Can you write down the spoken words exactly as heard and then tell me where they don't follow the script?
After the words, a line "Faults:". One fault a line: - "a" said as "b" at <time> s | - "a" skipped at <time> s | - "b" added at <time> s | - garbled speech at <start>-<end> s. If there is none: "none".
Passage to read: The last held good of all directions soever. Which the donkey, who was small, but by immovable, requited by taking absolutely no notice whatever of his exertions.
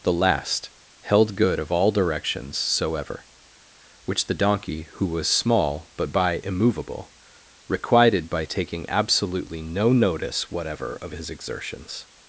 The last held good of all directions soever. Which the donkey, who was small, but by immovable, requited by taking absolutely no notice whatever of his exertions.
Faults:
none